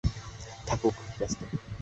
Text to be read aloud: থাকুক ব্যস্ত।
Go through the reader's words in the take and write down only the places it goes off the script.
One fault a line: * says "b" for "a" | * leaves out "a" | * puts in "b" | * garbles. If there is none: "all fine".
all fine